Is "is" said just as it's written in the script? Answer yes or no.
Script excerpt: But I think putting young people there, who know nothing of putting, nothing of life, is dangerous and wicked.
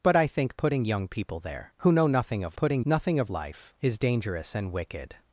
yes